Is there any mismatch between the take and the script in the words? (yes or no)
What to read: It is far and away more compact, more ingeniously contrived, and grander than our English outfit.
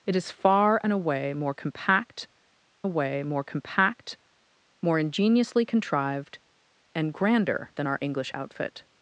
yes